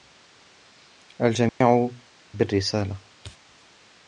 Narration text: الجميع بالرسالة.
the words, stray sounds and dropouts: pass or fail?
fail